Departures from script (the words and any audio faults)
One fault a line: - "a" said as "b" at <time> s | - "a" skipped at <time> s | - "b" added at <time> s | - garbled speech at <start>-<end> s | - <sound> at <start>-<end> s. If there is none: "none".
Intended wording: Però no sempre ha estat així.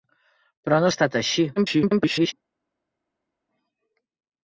- "sempre" skipped at 0.9 s
- garbled speech at 1.6-2.3 s